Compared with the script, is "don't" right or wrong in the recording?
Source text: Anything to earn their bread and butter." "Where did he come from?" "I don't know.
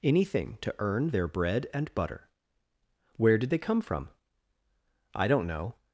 right